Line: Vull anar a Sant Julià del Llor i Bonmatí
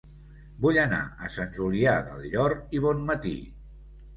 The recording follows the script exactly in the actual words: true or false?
true